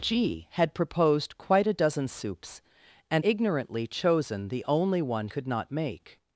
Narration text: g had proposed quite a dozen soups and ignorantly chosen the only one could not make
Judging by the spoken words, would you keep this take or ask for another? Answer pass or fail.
pass